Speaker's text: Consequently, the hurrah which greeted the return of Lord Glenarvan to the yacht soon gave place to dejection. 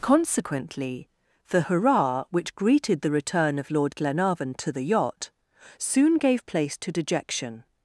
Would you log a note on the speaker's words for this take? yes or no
no